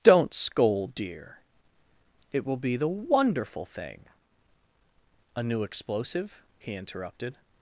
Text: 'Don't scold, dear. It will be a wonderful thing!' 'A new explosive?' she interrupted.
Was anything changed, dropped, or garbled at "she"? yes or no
yes